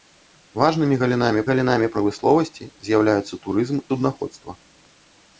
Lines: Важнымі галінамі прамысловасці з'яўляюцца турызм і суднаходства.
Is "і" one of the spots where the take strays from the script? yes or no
yes